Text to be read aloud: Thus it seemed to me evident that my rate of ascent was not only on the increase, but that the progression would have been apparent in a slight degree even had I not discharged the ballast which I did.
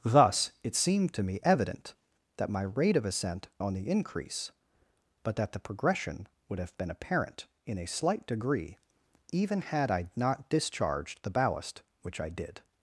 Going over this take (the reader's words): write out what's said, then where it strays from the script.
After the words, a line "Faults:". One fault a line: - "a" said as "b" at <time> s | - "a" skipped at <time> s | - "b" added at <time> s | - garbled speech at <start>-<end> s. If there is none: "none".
Thus it seemed to me evident that my rate of ascent on the increase, but that the progression would have been apparent in a slight degree even had I not discharged the ballast which I did.
Faults:
- "was not only" skipped at 3.5 s